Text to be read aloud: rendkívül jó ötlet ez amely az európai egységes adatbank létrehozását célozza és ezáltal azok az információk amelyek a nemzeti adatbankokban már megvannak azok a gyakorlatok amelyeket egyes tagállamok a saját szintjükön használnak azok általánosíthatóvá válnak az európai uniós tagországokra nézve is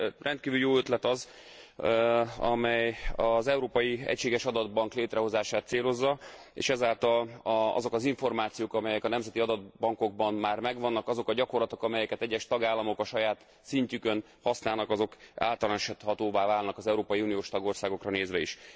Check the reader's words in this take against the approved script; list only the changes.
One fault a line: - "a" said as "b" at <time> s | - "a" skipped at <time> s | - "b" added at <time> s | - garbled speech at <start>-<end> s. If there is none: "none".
- "ez" said as "az" at 1.1 s